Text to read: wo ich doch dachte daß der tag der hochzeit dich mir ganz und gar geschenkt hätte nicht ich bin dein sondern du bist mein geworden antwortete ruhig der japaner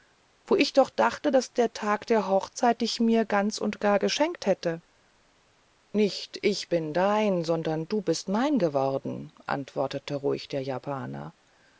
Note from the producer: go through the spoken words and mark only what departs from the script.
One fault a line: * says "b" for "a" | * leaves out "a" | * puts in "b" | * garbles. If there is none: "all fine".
all fine